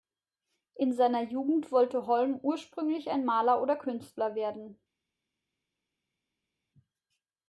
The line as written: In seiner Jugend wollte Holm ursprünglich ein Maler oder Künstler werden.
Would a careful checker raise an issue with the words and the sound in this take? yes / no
no